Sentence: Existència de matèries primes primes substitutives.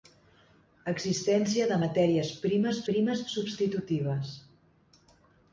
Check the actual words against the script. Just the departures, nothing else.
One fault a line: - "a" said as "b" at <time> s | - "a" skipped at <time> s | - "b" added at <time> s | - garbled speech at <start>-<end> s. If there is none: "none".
none